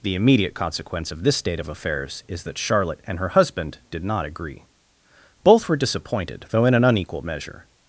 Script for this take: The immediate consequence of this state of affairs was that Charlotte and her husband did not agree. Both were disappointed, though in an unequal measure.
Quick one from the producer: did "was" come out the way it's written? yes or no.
no